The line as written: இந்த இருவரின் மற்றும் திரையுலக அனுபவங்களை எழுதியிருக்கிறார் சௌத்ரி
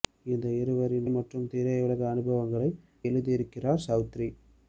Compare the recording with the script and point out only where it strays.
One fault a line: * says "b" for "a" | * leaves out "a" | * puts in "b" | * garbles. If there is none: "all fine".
all fine